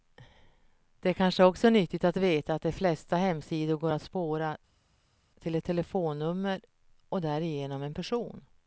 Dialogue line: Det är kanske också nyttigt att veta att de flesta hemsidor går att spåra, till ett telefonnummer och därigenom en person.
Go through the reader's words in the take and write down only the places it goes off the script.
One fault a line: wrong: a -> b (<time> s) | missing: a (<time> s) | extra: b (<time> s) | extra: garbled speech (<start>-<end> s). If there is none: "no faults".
no faults